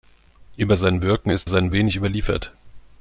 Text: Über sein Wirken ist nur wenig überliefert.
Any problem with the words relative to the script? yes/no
yes